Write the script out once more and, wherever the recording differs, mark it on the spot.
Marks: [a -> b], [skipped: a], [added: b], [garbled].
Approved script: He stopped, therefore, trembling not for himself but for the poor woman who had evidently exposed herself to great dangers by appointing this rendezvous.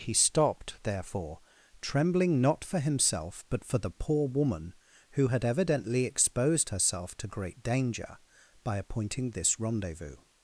He stopped, therefore, trembling not for himself but for the poor woman who had evidently exposed herself to great [dangers -> danger] by appointing this rendezvous.